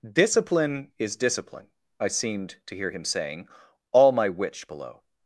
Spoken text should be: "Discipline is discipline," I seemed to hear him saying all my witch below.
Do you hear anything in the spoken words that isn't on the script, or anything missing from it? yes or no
no